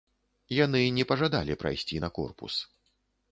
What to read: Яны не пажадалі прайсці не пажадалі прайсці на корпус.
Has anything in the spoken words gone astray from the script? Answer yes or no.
yes